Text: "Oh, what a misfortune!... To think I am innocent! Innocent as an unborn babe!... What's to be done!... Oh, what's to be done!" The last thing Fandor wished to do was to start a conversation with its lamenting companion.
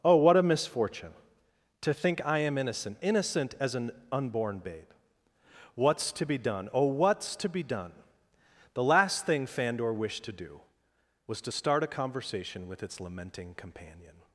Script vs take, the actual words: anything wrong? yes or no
no